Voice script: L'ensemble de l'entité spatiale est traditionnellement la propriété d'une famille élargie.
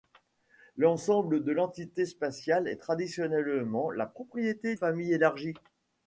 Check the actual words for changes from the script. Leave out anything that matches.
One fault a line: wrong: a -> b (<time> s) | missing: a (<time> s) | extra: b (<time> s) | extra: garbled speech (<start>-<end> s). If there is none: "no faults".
missing: d'une (4.8 s)